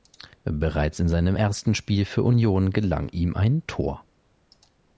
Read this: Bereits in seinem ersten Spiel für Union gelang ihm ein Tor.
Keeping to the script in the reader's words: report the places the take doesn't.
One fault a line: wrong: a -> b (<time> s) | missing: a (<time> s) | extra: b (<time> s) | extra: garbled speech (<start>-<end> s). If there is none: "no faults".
no faults